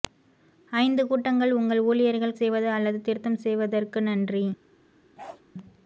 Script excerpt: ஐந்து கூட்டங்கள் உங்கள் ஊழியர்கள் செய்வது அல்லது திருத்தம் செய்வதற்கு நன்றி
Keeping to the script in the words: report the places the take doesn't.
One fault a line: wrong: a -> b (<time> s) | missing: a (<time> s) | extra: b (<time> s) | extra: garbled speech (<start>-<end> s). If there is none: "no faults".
no faults